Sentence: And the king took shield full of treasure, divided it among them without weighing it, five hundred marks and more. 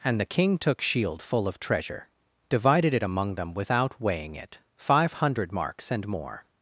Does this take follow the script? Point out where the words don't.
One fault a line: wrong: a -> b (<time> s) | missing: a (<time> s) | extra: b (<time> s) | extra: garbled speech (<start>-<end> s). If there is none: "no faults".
no faults